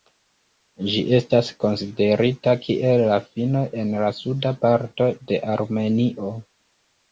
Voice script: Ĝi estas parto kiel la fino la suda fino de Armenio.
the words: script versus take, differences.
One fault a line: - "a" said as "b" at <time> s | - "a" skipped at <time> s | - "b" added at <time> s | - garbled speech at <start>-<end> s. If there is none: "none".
- "parto" said as "konsiderita" at 1.6 s
- "en" added at 3.9 s
- "fino" said as "parto" at 4.7 s